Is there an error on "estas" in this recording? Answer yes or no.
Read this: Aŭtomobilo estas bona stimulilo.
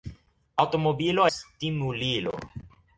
yes